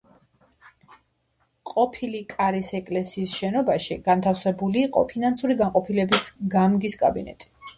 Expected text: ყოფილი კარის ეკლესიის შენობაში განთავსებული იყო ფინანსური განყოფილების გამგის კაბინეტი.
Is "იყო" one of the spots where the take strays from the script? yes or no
no